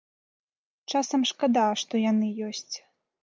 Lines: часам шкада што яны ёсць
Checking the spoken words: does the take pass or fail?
pass